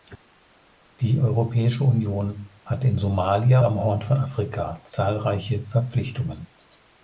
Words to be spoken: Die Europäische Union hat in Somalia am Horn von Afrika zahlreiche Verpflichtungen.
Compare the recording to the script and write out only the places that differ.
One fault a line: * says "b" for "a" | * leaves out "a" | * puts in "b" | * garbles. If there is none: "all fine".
all fine